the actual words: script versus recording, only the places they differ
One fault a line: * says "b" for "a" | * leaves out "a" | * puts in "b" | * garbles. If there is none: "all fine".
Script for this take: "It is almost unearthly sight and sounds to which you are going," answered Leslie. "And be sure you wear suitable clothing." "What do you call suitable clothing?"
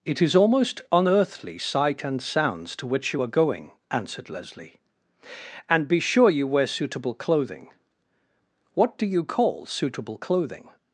all fine